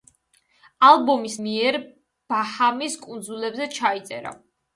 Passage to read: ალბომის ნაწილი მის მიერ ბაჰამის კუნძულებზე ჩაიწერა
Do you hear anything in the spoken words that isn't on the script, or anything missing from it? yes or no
yes